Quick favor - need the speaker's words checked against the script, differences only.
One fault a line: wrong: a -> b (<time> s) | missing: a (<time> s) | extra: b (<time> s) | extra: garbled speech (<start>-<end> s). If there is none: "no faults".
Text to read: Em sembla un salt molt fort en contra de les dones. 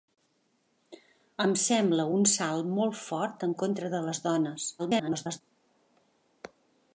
extra: garbled speech (4.8-5.4 s)